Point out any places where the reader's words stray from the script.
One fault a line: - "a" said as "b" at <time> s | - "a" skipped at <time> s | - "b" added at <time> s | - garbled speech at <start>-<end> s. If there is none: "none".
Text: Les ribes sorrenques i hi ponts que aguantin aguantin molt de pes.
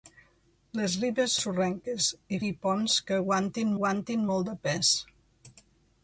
none